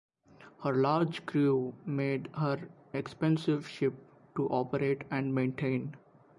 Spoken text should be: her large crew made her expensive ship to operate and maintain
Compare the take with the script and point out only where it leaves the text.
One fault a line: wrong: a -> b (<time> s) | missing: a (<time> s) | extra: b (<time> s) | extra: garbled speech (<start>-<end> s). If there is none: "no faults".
no faults